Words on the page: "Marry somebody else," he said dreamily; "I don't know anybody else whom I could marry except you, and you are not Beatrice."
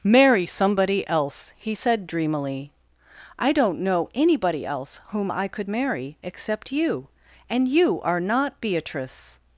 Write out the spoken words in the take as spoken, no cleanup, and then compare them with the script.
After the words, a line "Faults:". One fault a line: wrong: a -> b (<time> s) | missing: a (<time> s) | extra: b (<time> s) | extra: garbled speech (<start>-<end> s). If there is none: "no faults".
"Marry somebody else," he said dreamily; "I don't know anybody else whom I could marry except you, and you are not Beatrice."
Faults:
no faults